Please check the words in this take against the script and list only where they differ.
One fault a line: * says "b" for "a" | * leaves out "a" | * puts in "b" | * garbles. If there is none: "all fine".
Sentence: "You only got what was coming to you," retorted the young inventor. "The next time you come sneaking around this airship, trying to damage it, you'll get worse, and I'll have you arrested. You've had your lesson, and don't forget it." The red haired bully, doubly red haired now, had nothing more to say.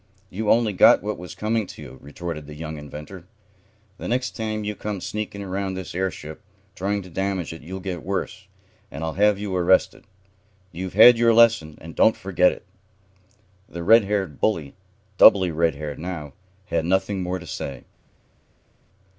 all fine